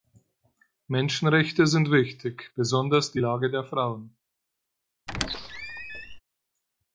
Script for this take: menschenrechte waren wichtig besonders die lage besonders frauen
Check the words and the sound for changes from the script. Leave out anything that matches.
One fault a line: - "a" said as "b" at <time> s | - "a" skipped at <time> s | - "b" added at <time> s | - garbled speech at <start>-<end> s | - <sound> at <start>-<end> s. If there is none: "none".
- "waren" said as "sind" at 1.7 s
- "besonders" said as "der" at 3.5 s
- squeak at 5.1-6.2 s